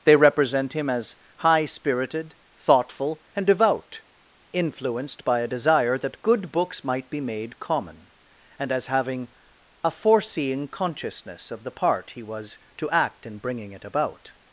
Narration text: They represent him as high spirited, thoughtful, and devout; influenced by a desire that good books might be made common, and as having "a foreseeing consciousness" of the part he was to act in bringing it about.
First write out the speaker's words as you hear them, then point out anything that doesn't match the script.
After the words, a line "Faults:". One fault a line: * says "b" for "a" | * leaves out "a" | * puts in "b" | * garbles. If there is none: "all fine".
They represent him as high spirited, thoughtful, and devout; influenced by a desire that good books might be made common, and as having "a foreseeing consciousness" of the part he was to act in bringing it about.
Faults:
all fine